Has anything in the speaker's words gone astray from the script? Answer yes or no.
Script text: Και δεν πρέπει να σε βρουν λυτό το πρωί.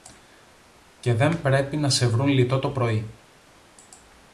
no